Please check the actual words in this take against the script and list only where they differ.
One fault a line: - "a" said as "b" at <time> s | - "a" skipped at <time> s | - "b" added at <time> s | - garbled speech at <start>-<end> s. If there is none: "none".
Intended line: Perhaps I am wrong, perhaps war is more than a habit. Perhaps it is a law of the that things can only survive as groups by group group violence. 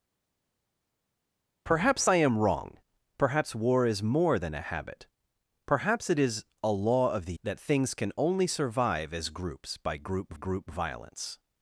none